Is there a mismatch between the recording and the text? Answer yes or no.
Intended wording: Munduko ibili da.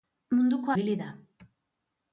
no